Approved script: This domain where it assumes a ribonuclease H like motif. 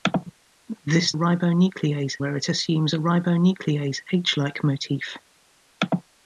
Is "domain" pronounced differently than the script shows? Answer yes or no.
yes